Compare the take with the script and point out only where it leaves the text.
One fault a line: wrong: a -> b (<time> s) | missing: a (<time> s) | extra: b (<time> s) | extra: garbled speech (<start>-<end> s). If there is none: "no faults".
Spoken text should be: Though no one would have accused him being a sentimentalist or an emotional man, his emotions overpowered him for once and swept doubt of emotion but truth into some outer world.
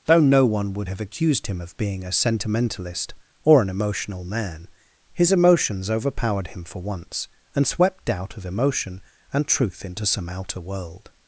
extra: of (1.6 s)
wrong: but -> and (9.3 s)